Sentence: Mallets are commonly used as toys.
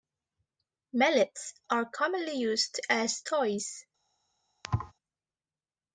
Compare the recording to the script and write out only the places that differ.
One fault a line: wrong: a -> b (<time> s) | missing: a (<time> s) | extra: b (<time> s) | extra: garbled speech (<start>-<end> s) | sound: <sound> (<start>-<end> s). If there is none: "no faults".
sound: thud (4.6-4.9 s)